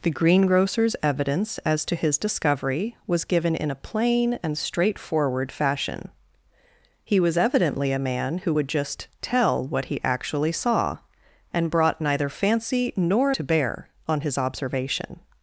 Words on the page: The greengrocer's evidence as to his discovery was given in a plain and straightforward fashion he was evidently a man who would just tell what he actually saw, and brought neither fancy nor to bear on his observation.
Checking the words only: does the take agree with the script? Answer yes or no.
yes